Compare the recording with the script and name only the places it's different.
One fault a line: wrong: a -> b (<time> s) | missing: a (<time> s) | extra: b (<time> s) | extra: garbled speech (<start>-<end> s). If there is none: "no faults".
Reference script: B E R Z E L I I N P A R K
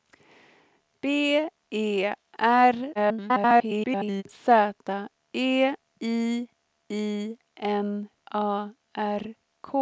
extra: garbled speech (2.9-4.2 s)
missing: L (5.7 s)
missing: P (8.1 s)